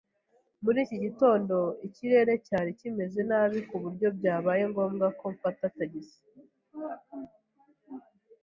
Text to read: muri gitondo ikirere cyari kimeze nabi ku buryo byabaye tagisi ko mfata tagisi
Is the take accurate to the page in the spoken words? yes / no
no